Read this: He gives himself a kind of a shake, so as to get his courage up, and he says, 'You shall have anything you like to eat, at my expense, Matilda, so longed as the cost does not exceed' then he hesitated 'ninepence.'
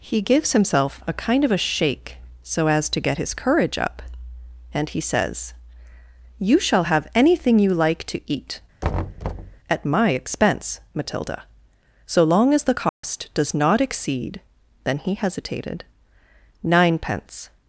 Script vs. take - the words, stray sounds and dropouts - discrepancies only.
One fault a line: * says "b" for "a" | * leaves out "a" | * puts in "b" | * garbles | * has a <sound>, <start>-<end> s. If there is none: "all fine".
* has a thud, 8.8-9.6 s
* says "long" for "longed"
* has a dropout, 12.9-13.0 s